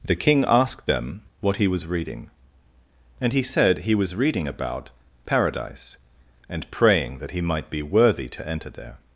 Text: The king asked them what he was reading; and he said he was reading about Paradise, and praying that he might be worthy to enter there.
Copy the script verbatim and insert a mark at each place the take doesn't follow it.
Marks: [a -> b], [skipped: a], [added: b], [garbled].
The king asked them what he was reading; and he said he was reading about Paradise, and praying that he might be worthy to enter there.